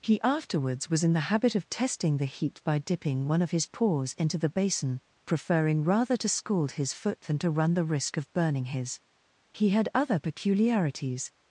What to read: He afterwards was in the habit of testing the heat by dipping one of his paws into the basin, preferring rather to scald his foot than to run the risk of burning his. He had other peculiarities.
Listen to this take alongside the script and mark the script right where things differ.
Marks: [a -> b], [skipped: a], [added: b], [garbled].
He afterwards was in the habit of testing the heat by dipping one of his paws into the basin, preferring rather to scald his foot than to run the risk of burning his. He had other peculiarities.